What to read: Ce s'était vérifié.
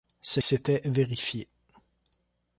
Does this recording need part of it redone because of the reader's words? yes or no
no